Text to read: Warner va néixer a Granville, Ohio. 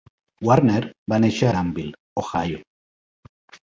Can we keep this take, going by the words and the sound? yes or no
no